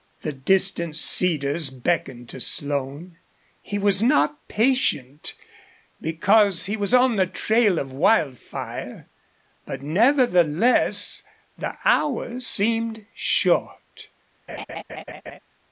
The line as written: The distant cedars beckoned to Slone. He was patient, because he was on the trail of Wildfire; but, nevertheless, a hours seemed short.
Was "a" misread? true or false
true